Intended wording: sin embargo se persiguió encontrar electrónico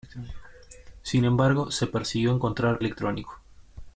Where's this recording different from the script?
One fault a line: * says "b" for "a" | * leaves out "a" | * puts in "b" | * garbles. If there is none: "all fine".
all fine